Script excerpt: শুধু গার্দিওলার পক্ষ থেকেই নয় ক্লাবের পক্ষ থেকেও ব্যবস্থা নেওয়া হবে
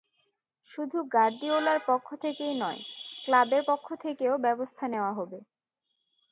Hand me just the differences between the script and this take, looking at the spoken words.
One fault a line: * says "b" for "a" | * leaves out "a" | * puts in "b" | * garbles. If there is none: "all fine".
all fine